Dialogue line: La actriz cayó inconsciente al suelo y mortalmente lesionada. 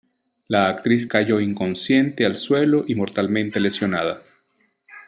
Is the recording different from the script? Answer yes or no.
no